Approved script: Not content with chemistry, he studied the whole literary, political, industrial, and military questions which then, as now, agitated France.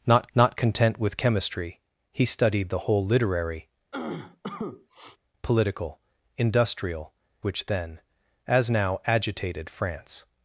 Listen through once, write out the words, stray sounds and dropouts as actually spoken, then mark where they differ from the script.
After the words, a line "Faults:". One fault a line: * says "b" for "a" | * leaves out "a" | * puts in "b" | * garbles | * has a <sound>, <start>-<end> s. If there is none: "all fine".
Not not content with chemistry, he studied the whole literary, political, industrial, which then, as now, agitated France.
Faults:
* puts in "not"
* has a cough, 3.9-5.2 s
* leaves out "and military questions"